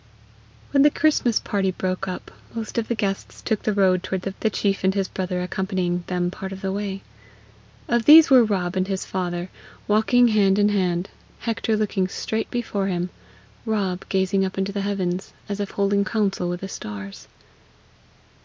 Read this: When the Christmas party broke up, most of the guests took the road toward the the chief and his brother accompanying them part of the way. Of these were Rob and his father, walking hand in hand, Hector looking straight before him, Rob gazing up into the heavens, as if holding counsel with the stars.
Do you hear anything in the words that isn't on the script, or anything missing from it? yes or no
no